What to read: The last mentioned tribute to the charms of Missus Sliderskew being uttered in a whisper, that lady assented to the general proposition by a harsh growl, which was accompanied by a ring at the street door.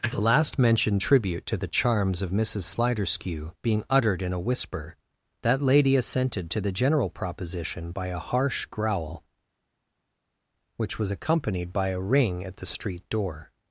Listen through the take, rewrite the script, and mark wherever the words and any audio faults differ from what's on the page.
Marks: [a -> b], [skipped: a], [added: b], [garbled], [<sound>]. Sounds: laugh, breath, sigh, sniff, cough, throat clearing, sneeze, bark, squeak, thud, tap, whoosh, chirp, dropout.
The last mentioned tribute to the charms of Missus Sliderskew being uttered in a whisper, that lady assented to the general proposition by a harsh growl, which was accompanied by a ring at the street door.